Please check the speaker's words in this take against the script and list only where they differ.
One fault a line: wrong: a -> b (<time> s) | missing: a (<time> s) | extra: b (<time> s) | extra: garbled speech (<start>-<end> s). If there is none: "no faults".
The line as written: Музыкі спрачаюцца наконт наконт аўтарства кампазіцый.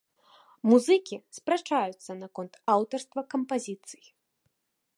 missing: наконт (2.5 s)